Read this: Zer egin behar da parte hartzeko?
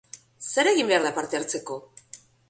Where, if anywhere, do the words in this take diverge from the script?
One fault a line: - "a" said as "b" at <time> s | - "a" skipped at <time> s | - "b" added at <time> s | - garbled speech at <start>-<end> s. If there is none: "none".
none